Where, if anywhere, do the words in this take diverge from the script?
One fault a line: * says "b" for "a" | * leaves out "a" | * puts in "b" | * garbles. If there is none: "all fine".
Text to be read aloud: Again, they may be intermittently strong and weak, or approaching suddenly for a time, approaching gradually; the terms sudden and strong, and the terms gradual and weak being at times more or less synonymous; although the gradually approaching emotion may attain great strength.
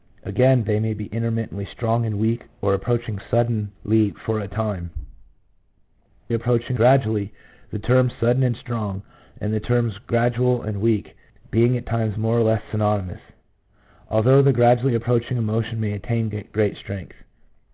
all fine